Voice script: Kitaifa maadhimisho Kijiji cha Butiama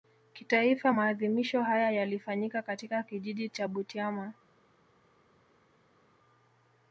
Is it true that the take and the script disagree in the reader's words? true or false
true